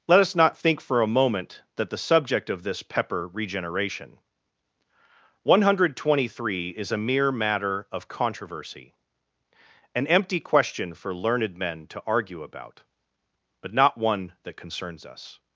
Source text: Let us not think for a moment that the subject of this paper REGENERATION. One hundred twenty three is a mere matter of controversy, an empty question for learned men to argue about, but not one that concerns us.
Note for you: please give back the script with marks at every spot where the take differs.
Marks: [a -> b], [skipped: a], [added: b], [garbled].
Let us not think for a moment that the subject of this [paper -> pepper] REGENERATION. One hundred twenty three is a mere matter of controversy, an empty question for learned men to argue about, but not one that concerns us.